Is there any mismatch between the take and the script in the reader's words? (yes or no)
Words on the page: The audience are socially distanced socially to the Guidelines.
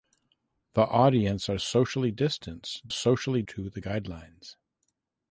no